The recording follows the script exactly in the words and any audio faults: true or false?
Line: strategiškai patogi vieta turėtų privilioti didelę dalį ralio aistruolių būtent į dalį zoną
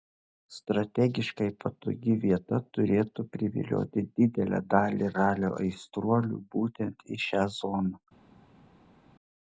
false